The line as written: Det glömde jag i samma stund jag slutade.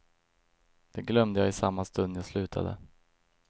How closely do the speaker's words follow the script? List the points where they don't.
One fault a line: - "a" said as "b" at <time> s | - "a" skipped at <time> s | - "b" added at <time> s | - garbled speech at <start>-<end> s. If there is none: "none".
none